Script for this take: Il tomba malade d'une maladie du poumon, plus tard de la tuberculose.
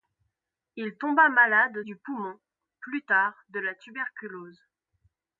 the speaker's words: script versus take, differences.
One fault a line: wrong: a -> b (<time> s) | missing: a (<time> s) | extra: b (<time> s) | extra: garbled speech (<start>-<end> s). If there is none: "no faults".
missing: d'une maladie (1.8 s)